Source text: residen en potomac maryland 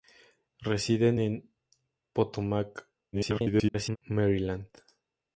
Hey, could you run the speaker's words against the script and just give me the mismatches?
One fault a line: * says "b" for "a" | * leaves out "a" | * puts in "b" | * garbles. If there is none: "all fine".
* garbles